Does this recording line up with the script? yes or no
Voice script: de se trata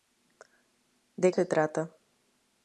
yes